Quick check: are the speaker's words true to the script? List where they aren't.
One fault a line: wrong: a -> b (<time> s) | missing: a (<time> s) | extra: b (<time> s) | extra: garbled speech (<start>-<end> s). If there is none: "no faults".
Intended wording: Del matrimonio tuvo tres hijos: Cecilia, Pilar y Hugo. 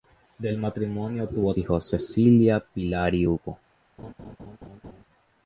missing: tres (1.5 s)